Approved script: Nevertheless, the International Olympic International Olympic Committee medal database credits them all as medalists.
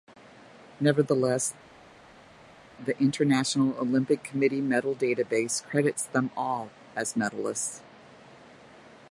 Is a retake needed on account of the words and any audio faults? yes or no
yes